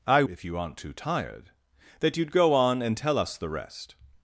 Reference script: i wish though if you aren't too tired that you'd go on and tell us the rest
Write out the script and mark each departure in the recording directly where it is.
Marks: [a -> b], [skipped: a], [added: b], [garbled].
i [skipped: wish though] if you aren't too tired that you'd go on and tell us the rest